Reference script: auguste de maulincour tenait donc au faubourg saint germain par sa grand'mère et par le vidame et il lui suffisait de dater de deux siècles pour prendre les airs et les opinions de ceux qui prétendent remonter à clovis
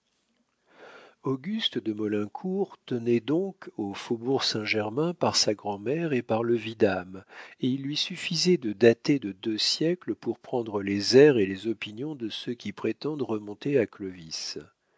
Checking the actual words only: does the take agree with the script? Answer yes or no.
yes